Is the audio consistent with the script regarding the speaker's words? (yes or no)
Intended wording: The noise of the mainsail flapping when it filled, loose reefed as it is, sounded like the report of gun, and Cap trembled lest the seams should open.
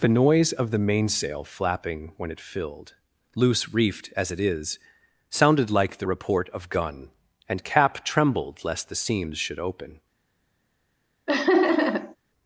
yes